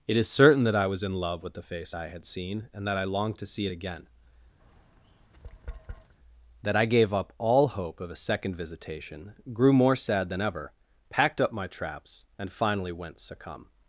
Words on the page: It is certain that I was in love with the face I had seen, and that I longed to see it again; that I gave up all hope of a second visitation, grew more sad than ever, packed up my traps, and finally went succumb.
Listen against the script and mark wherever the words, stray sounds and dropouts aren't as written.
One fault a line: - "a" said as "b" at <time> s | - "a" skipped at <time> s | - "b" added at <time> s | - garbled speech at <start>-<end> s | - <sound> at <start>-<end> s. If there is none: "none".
- tap at 4.6-6.1 s